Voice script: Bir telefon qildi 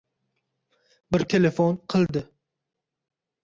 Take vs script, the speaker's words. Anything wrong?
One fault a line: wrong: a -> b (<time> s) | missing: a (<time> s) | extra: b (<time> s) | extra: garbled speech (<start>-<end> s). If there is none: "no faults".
no faults